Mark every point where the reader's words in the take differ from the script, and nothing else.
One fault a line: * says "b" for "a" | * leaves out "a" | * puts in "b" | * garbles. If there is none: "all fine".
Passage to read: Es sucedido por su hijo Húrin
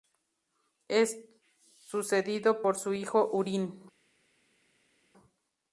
all fine